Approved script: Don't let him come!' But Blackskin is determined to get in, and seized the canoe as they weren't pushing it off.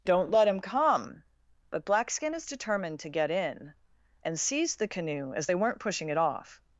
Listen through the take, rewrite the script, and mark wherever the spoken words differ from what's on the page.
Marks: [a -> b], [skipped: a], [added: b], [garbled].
Don't let him come!' But Blackskin is determined to get in, and seized the canoe as they weren't pushing it off.